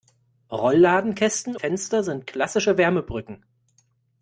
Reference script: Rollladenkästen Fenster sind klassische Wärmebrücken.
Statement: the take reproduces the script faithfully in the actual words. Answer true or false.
true